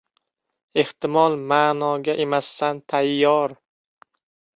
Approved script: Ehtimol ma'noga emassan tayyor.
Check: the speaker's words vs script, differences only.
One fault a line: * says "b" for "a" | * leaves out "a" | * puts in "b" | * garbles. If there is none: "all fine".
all fine